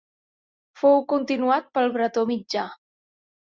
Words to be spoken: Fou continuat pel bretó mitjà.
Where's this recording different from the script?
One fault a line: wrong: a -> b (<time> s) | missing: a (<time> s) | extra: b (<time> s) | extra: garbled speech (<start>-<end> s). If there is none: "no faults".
no faults